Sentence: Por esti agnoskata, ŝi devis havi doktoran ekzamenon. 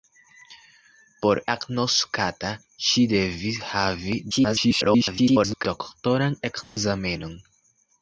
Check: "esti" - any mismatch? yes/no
yes